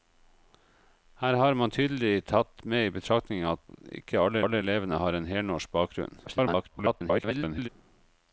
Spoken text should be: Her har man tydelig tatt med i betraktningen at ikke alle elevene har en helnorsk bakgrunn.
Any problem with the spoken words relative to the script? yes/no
yes